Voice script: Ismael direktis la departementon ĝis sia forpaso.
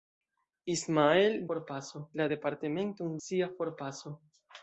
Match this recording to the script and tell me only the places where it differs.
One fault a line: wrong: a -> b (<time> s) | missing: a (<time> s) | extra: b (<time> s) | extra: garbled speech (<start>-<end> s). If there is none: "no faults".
wrong: direktis -> forpaso (1.5 s)
missing: ĝis (3.2 s)